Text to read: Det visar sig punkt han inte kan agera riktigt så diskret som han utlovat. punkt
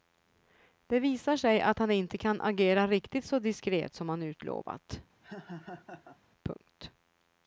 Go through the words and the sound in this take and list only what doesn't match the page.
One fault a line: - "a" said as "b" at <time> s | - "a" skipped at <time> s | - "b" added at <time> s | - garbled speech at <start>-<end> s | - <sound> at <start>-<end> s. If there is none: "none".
- "punkt" said as "att" at 1.6 s
- laugh at 5.2-6.2 s